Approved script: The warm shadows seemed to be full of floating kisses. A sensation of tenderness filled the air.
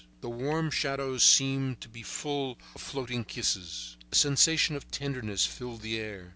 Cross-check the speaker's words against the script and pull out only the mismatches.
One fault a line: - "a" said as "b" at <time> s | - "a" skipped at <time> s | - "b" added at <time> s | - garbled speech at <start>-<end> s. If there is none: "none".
none